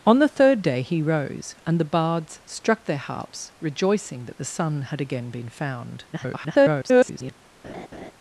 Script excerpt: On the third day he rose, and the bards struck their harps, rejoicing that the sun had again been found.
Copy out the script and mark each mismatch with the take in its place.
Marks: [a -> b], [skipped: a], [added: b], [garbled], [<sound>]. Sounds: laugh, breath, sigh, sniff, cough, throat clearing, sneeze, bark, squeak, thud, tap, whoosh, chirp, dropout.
On the third day he rose, and the bards struck their harps, rejoicing that the sun had again been found. [garbled] [laugh]